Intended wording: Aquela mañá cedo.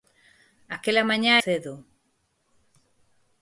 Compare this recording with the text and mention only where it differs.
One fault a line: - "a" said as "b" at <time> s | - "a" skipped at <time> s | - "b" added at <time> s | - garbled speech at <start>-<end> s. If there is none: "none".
none